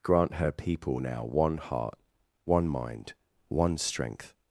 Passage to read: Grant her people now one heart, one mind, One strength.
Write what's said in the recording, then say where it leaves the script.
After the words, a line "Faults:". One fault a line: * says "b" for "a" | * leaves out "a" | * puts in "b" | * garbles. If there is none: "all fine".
Grant her people now one heart, one mind, One strength.
Faults:
all fine